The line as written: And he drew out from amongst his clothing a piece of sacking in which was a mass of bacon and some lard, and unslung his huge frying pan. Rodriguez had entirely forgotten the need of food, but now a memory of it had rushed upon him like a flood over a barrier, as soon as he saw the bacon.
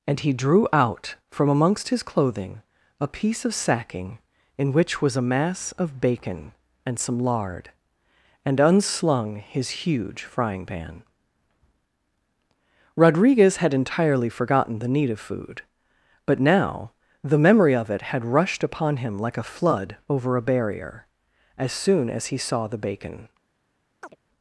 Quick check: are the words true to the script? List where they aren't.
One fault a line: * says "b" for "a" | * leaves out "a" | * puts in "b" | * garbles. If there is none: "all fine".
* says "the" for "a"